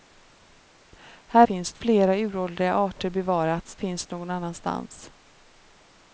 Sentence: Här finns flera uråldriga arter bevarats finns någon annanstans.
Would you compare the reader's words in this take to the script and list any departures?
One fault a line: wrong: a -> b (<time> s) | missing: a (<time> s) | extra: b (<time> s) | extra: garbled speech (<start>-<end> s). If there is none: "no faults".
no faults